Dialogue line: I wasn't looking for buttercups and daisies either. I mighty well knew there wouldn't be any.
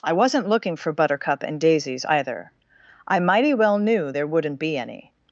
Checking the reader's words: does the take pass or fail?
fail